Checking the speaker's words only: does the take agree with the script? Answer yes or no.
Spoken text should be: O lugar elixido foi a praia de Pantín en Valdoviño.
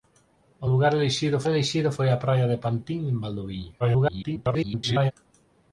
no